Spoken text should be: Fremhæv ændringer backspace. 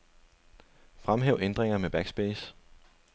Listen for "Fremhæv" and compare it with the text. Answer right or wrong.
right